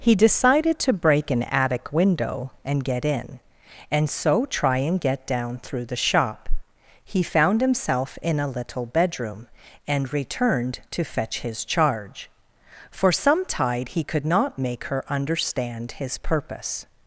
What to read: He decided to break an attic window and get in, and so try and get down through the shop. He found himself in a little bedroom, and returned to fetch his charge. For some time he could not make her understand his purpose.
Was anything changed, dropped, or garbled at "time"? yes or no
yes